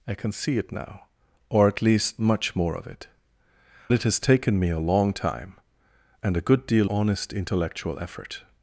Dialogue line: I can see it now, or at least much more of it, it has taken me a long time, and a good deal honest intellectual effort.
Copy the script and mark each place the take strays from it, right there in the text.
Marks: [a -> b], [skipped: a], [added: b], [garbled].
I can see it now, or at least much more of it, it has taken me a long time, and a good deal honest intellectual effort.